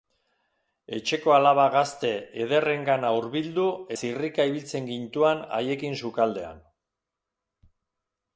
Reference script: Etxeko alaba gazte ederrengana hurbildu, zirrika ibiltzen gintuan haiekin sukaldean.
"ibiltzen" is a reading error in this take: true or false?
false